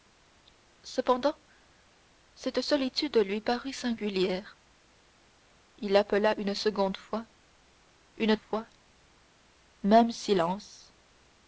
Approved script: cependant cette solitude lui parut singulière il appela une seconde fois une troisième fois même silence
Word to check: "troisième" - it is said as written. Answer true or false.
false